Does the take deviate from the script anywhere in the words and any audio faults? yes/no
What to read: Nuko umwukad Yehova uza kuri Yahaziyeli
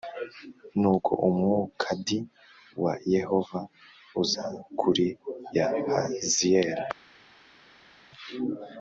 yes